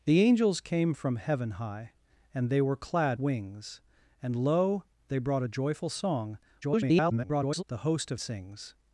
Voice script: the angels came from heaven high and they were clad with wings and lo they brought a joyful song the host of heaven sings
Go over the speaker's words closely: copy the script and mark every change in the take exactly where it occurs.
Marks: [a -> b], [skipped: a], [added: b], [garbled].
the angels came from heaven high and they were clad [skipped: with] wings and lo they brought a joyful song [garbled] the host of [skipped: heaven] sings